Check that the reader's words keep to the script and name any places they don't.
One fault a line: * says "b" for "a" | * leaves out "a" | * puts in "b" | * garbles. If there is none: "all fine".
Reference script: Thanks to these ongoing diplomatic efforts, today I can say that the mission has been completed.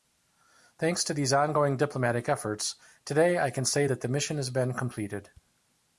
all fine